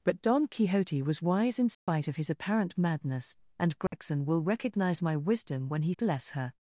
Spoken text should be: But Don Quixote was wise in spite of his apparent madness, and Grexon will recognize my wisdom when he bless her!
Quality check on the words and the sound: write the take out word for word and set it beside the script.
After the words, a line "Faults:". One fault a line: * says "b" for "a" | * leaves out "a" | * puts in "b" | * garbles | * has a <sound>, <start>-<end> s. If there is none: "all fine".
But Don Quixote was wise in spite of his apparent madness, and Grexon will recognize my wisdom when he bless her!
Faults:
* has a dropout, 1.7-1.9 s
* has a dropout, 3.9-3.9 s